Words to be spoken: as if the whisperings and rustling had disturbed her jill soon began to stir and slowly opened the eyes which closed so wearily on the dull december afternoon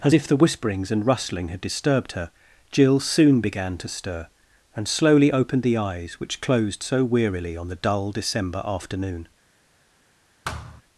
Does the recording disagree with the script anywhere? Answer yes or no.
no